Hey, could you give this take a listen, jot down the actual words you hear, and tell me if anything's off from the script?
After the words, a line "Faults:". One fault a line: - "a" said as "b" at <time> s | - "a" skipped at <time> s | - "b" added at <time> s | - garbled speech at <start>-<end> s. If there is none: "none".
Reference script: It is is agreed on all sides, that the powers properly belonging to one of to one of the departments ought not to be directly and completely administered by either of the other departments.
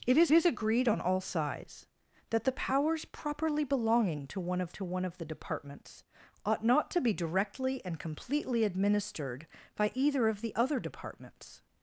It is is agreed on all sides, that the powers properly belonging to one of to one of the departments ought not to be directly and completely administered by either of the other departments.
Faults:
none